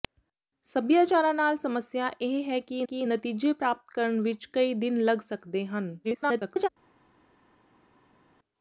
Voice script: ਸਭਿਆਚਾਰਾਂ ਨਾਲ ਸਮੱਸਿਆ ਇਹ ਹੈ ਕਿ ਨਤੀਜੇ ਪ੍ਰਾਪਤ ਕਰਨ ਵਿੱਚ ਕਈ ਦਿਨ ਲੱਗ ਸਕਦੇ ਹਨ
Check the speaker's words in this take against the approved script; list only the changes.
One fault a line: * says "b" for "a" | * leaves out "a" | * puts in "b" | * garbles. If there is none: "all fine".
* puts in "ਕਿ"
* garbles